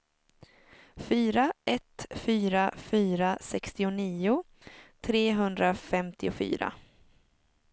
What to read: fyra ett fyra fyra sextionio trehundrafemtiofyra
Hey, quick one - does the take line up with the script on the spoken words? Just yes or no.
yes